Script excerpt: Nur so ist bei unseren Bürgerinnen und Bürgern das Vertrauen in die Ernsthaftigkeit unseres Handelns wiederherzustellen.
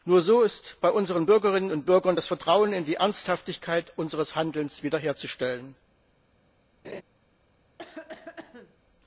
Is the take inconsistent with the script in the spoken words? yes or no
no